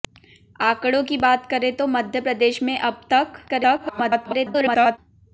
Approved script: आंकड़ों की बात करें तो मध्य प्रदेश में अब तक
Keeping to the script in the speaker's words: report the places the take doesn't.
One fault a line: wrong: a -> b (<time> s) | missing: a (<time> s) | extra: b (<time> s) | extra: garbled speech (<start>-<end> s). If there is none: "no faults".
extra: garbled speech (3.5-5.0 s)